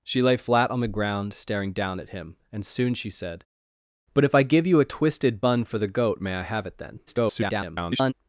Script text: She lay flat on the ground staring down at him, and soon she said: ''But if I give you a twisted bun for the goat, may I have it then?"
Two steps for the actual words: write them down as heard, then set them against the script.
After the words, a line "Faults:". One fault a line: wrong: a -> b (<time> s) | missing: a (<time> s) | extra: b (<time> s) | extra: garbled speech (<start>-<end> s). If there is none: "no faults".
She lay flat on the ground staring down at him, and soon she said: ''But if I give you a twisted bun for the goat, may I have it then?" [garbled]
Faults:
extra: garbled speech (7.1-8.1 s)